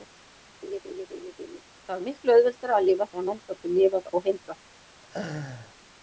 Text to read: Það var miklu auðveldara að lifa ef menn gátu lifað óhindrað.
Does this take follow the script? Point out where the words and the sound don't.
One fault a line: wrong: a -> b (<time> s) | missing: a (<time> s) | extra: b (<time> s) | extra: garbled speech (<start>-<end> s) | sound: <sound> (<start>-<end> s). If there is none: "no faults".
sound: laugh (0.6-1.6 s)
wrong: ef -> þegar (3.1 s)
sound: laugh (5.0-5.7 s)